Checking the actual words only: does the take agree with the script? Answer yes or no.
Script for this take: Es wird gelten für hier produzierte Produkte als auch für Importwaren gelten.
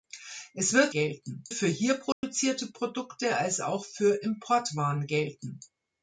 yes